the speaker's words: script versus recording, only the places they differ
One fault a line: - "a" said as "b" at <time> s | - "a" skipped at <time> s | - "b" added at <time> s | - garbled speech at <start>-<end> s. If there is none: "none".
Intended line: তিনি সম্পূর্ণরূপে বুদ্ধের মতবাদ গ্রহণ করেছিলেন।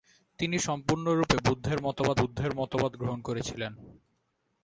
- "বুদ্ধের মতবাদ" added at 2.2 s